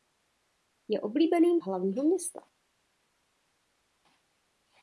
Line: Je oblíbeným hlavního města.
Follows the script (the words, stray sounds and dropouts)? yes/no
yes